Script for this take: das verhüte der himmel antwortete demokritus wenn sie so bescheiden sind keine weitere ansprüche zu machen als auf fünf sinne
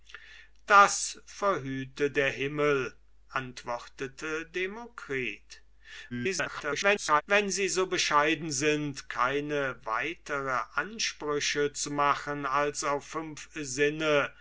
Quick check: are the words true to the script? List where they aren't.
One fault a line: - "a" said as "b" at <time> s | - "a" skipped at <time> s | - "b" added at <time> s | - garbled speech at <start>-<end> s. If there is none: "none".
- garbled speech at 6.1-7.2 s